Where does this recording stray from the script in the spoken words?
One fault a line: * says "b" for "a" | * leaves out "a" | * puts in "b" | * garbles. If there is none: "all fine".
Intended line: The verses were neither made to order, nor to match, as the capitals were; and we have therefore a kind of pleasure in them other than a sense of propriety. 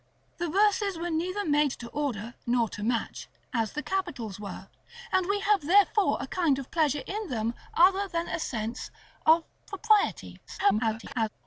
* garbles